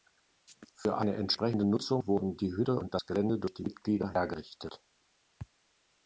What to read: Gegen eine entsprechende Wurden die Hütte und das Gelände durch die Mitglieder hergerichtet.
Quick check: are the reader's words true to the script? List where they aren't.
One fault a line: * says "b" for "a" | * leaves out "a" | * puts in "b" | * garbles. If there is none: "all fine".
* says "Für" for "Gegen"
* puts in "Nutzung"